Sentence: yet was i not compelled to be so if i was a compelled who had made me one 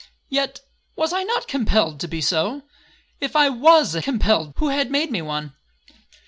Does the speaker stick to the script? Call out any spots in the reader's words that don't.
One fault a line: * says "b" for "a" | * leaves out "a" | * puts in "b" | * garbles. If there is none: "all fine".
all fine